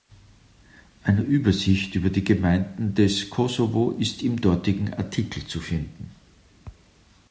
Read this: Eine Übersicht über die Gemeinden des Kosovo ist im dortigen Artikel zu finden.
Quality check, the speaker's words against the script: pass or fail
pass